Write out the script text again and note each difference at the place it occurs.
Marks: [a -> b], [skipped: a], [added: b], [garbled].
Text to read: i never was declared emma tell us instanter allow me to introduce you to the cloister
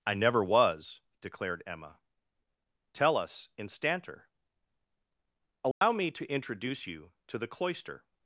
i never was declared emma tell us instanter allow me to introduce you to the cloister